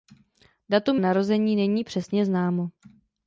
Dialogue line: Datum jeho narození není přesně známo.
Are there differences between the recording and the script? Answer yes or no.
yes